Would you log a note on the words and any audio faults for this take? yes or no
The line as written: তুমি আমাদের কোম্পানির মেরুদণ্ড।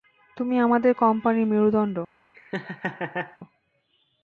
yes